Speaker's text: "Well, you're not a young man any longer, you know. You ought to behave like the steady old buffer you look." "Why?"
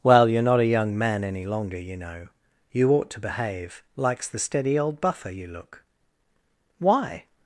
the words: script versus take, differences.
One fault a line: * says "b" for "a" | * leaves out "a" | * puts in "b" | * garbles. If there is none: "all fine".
* says "likes" for "like"